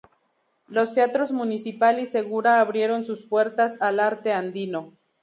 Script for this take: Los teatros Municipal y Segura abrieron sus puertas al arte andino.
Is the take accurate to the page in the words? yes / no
yes